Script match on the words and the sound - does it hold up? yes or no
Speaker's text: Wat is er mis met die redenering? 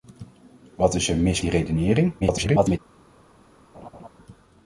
no